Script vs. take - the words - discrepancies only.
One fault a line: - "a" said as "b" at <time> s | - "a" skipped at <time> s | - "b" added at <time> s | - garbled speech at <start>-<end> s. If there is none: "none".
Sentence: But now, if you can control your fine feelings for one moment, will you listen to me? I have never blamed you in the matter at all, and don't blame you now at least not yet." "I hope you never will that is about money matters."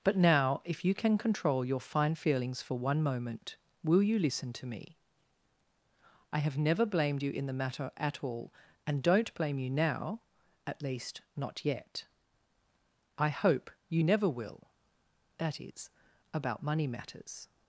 none